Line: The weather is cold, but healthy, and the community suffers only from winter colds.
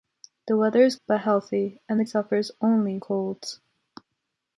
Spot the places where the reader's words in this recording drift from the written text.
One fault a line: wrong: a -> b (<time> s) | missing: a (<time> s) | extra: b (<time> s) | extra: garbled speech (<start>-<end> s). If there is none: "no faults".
missing: cold (0.9 s)
missing: community (2.0 s)
missing: from winter (3.0 s)